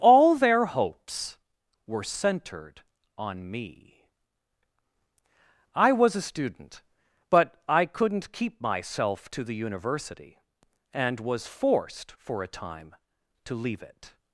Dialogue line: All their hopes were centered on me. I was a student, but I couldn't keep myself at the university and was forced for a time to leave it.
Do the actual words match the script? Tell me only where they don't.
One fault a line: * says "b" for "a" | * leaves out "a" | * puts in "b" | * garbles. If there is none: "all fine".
* says "to" for "at"